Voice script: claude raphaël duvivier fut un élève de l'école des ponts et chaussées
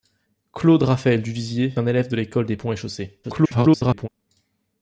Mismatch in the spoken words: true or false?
true